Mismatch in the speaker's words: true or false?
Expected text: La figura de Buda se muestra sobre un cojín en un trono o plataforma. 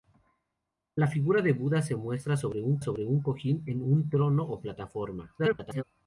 true